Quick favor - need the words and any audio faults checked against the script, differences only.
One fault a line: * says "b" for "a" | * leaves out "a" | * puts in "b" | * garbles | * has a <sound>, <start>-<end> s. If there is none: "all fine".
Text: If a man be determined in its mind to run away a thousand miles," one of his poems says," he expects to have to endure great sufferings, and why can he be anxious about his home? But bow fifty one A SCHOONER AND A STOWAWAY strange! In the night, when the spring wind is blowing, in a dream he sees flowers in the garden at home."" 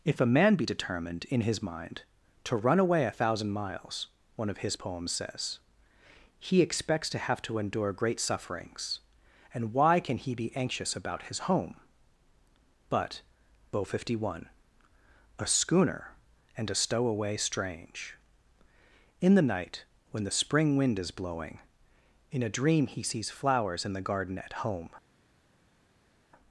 * says "his" for "its"